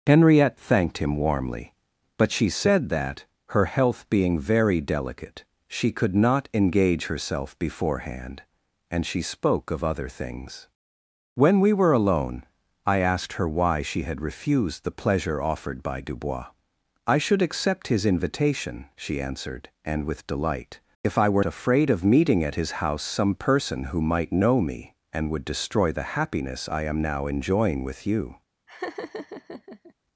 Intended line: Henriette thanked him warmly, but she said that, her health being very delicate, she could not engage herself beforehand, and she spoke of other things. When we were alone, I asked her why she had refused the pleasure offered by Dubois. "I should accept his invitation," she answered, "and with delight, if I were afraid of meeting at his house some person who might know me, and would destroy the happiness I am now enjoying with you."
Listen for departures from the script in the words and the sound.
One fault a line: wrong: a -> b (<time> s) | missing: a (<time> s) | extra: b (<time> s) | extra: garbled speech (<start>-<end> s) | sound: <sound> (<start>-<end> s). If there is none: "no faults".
sound: laugh (28.7-29.9 s)